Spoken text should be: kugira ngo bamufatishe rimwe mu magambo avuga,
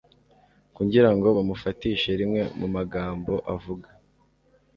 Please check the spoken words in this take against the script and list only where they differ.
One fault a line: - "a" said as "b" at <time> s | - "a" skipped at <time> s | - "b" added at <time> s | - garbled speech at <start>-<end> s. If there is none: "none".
none